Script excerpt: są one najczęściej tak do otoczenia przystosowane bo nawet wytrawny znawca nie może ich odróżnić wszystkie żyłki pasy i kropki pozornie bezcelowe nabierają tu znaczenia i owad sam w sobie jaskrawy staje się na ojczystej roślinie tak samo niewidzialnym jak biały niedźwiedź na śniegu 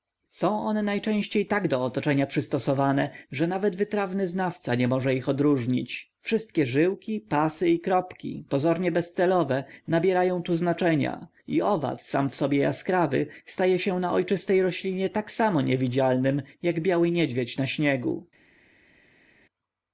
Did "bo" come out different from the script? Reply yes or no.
yes